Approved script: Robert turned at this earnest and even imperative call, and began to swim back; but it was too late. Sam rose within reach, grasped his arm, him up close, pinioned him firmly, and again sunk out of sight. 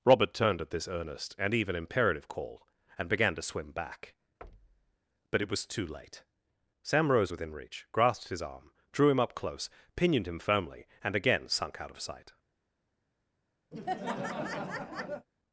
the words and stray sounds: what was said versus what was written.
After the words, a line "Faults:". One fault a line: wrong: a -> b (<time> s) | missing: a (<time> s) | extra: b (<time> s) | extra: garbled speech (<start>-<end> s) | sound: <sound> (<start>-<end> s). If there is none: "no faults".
Robert turned at this earnest and even imperative call, and began to swim back; but it was too late. Sam rose within reach, grasped his arm, drew him up close, pinioned him firmly, and again sunk out of sight.
Faults:
sound: thud (4.4-5.0 s)
extra: drew (8.9 s)
sound: laugh (13.7-15.3 s)